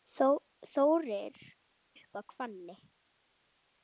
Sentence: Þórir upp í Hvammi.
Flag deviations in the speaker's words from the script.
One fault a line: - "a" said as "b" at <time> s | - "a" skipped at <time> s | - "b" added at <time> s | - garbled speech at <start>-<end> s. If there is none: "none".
none